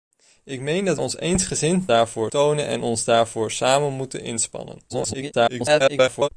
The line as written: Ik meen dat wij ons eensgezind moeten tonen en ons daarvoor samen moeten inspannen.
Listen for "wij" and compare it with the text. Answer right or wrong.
wrong